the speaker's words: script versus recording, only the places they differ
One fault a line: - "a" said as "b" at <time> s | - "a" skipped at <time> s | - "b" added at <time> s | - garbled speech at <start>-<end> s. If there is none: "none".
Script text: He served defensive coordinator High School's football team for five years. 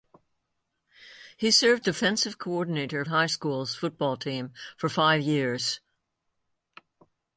none